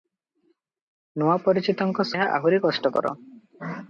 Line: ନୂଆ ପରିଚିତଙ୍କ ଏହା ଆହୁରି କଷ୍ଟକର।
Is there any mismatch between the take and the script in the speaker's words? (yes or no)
no